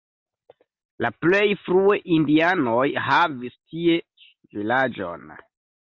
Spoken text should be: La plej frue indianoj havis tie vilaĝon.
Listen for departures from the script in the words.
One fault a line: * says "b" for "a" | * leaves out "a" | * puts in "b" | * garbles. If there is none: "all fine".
all fine